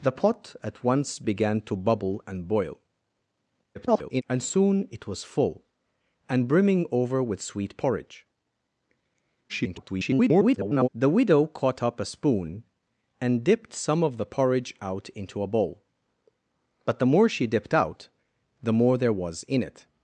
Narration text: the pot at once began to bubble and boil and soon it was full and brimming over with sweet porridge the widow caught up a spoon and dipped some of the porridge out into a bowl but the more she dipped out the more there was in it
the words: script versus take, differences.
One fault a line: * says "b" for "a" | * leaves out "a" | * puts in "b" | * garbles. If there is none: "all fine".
* garbles
* garbles